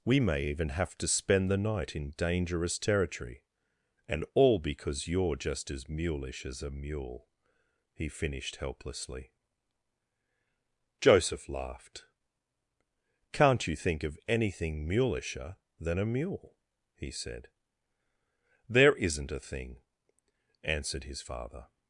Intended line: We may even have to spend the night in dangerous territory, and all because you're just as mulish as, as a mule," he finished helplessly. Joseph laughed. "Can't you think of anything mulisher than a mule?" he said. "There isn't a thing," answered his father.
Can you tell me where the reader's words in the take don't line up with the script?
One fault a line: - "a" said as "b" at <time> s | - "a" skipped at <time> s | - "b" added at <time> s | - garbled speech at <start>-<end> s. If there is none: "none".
- "as" skipped at 6.6 s